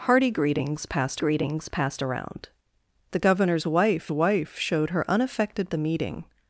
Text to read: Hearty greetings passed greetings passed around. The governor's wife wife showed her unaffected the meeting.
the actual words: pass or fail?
pass